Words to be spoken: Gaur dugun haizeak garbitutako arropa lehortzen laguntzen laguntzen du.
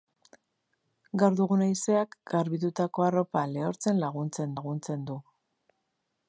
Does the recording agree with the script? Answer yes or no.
yes